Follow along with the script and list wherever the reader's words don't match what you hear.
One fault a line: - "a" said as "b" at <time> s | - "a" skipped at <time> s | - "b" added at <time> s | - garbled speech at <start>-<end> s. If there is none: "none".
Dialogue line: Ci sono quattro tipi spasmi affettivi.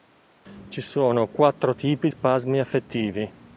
none